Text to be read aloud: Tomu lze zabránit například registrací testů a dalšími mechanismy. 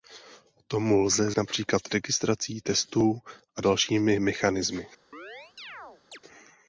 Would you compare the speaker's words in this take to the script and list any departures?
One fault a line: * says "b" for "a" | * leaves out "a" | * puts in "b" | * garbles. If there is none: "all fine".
* leaves out "zabránit"